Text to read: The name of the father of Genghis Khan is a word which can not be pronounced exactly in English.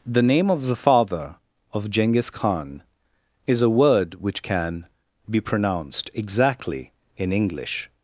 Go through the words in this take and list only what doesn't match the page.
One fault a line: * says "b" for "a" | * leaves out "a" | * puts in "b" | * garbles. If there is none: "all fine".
* leaves out "not"